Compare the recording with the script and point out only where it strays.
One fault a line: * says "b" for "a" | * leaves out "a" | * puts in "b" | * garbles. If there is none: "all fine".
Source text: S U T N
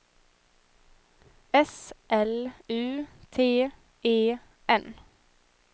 * puts in "L"
* puts in "E"